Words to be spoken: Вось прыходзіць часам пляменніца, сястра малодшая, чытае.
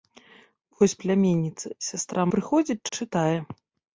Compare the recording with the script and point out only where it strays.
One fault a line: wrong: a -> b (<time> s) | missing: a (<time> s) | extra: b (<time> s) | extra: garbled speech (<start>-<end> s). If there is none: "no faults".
missing: прыходзіць часам (0.9 s)
wrong: малодшая -> прыходзіць (2.4 s)